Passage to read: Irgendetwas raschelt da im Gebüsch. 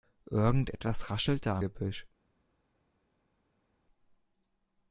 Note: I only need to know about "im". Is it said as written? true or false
false